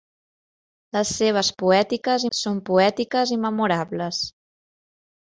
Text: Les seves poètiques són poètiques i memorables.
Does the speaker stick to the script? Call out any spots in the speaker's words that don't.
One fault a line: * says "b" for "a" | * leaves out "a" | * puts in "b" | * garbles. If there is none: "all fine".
all fine